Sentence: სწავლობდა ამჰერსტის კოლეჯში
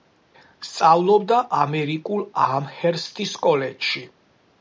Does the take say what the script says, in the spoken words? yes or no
no